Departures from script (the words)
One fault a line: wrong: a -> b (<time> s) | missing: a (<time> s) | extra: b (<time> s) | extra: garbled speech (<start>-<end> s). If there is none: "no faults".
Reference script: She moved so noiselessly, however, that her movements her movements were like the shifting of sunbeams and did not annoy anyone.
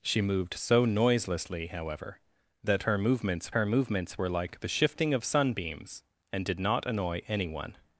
no faults